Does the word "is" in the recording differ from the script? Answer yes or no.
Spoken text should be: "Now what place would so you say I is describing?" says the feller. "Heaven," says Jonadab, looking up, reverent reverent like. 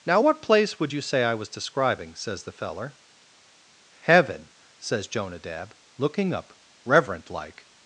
yes